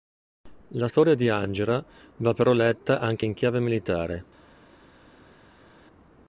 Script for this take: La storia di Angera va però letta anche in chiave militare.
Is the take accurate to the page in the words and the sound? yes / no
yes